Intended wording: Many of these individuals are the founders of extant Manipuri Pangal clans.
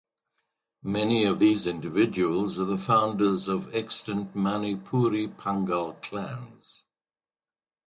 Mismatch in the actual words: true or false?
false